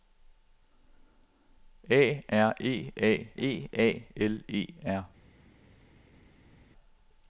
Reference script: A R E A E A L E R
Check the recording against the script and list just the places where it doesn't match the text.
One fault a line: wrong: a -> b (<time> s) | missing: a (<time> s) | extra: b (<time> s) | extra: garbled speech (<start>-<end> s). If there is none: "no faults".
no faults